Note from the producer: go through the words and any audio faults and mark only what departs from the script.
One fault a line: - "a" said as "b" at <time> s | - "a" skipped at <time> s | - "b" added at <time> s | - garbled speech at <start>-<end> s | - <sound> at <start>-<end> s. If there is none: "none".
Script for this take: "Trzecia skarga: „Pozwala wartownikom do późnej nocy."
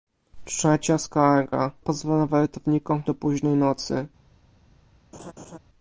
- laugh at 5.1-5.6 s